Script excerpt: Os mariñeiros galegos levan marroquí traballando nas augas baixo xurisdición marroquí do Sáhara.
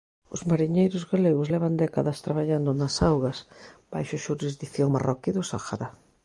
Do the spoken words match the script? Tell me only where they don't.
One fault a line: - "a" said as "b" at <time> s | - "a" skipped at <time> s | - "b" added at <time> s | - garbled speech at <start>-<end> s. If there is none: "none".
- "marroquí" said as "décadas" at 1.8 s